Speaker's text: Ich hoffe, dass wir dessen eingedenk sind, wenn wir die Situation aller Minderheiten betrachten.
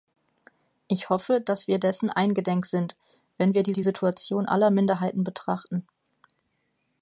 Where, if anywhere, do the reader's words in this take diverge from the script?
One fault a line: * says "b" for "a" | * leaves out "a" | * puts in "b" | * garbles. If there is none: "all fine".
* puts in "die"